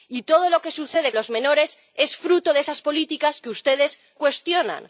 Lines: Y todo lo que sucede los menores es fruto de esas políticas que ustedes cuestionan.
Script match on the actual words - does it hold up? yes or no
yes